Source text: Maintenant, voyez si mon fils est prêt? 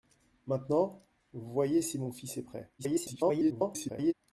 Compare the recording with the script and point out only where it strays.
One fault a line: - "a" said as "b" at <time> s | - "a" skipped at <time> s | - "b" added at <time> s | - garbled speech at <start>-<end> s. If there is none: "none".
- garbled speech at 2.8-4.1 s